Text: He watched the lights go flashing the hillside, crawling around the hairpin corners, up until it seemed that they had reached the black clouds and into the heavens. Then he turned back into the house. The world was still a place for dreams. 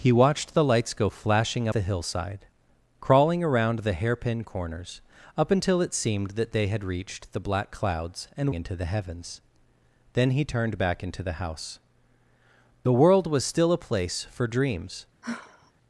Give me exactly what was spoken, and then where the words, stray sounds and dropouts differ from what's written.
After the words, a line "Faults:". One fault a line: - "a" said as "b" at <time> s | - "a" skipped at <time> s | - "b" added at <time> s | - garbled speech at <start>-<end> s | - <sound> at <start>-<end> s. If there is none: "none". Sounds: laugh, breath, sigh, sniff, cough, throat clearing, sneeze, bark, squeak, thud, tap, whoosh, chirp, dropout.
He watched the lights go flashing the hillside, crawling around the hairpin corners, up until it seemed that they had reached the black clouds and into the heavens. Then he turned back into the house. The world was still a place for dreams.
Faults:
- sigh at 15.2-15.7 s